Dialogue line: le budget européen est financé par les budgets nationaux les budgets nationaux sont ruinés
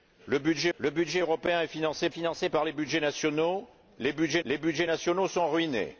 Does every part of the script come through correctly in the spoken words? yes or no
no